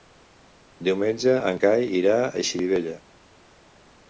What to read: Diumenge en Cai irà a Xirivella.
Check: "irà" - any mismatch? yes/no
no